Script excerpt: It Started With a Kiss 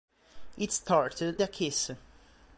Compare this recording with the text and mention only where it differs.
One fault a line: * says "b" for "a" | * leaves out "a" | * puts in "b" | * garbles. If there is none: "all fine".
* leaves out "With"